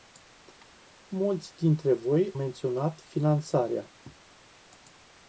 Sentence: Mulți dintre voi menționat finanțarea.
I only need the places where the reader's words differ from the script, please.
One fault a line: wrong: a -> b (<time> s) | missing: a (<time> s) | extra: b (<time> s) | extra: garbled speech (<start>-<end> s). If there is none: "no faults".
no faults